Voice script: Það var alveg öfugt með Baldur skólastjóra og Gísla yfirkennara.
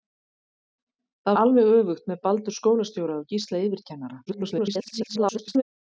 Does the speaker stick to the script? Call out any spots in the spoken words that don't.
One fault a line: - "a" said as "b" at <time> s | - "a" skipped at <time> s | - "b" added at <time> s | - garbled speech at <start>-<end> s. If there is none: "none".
- "var" skipped at 1.4 s
- garbled speech at 4.3-5.6 s